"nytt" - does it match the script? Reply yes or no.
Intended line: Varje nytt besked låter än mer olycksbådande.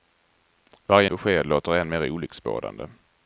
no